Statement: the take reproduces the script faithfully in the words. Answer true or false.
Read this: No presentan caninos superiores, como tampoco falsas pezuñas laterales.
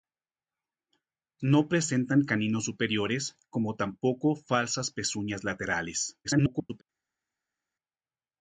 false